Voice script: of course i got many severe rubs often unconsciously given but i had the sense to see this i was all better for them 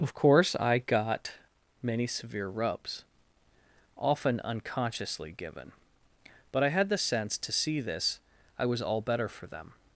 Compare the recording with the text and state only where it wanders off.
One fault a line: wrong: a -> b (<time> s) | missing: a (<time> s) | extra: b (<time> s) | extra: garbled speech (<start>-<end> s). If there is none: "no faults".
no faults